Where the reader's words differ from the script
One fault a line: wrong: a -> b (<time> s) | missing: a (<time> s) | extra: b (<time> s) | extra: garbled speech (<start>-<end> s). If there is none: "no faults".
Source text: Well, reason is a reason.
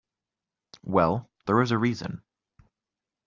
wrong: reason -> there (1.4 s)